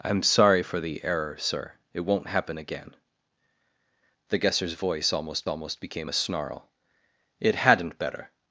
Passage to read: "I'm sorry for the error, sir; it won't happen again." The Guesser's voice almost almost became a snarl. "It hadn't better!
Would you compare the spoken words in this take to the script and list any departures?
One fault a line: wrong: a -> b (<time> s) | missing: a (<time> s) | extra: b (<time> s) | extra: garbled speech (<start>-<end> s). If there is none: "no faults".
no faults